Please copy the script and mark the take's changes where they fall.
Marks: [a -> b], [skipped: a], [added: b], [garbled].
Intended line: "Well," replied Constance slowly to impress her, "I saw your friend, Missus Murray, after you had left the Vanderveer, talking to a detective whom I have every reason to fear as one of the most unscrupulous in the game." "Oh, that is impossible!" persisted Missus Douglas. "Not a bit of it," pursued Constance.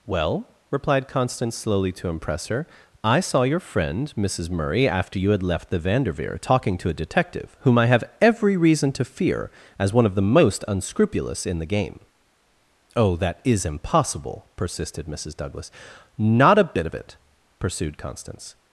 "Well," replied Constance slowly to impress her, "I saw your friend, Missus Murray, after you had left the Vanderveer, talking to a detective whom I have every reason to fear as one of the most unscrupulous in the game." "Oh, that is impossible!" persisted Missus Douglas. "Not a bit of it," pursued Constance.